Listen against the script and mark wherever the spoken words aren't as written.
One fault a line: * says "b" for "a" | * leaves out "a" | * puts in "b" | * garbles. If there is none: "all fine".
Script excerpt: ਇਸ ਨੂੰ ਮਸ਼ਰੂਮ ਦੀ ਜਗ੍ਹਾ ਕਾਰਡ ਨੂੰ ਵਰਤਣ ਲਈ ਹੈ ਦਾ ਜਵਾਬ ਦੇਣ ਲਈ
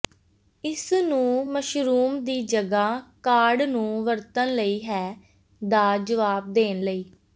all fine